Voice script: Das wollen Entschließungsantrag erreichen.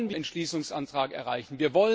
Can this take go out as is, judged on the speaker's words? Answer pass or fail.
pass